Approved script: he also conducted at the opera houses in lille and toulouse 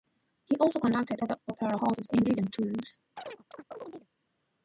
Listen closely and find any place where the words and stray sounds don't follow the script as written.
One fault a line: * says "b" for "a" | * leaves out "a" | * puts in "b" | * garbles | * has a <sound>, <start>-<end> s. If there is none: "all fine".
* has a chirp, 3.2-4.1 s